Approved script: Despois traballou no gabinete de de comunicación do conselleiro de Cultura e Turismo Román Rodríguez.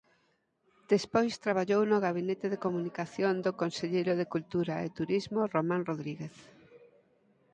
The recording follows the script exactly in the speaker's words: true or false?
false